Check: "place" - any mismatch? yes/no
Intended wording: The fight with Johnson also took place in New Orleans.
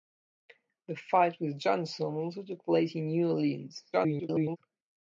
no